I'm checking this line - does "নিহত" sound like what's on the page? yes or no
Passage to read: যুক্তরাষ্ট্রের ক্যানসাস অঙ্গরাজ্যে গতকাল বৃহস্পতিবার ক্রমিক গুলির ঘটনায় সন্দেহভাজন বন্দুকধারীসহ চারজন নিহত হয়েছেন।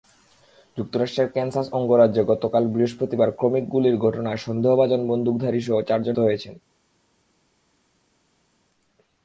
no